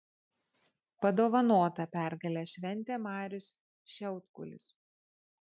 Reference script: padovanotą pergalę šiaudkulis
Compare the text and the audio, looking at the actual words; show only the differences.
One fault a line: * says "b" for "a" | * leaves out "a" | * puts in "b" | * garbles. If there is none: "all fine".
* puts in "šventė marius"